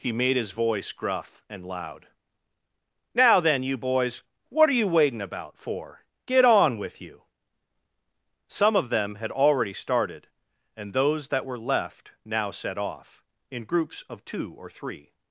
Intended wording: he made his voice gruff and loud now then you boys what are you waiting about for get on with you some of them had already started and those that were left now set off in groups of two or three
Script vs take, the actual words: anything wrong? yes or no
no